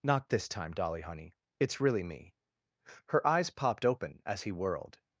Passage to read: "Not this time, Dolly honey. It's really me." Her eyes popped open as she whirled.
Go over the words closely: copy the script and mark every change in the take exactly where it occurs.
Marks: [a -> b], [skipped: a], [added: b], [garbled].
"Not this time, Dolly honey. It's really me." Her eyes popped open as [she -> he] whirled.